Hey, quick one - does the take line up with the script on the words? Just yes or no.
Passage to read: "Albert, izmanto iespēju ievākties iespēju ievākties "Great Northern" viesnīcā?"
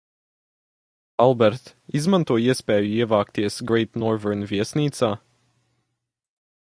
no